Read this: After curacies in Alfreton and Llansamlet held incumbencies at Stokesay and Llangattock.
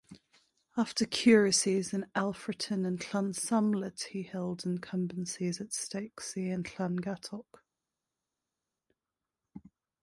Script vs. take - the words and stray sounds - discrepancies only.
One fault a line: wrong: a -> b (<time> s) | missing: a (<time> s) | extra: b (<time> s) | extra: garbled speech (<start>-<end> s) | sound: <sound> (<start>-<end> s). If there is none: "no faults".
extra: he (4.0 s)